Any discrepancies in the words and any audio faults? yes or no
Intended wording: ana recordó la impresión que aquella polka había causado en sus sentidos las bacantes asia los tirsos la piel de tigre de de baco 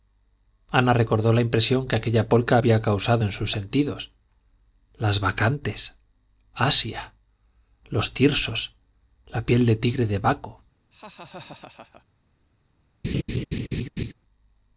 yes